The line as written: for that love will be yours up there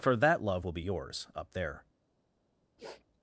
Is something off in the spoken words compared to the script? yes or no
no